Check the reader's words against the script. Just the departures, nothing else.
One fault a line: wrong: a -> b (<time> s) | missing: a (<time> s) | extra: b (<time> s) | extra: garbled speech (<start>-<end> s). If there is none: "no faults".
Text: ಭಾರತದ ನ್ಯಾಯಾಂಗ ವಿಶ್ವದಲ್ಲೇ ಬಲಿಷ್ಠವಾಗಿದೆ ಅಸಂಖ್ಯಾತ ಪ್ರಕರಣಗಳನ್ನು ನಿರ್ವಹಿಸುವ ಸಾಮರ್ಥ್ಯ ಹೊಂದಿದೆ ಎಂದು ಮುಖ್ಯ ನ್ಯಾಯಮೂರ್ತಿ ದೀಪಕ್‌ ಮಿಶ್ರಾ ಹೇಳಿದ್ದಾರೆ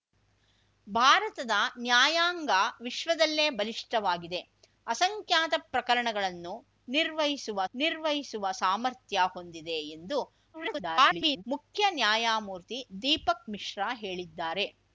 extra: ನಿರ್ವಹಿಸುವ (7.7 s)
extra: garbled speech (10.5-11.4 s)